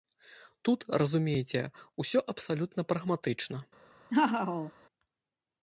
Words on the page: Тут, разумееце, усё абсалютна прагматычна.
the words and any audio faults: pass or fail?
fail